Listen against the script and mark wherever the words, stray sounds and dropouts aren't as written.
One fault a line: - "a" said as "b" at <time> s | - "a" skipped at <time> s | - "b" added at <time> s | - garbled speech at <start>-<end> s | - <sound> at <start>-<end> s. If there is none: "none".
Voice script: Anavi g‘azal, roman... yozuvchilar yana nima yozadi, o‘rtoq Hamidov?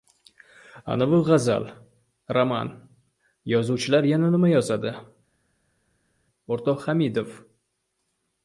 none